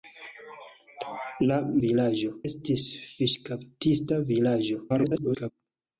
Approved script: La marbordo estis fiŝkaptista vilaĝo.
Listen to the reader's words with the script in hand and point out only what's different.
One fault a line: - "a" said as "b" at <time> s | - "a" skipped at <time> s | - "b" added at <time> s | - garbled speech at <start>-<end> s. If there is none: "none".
- "marbordo" said as "vilaĝo" at 1.9 s
- garbled speech at 4.9-5.5 s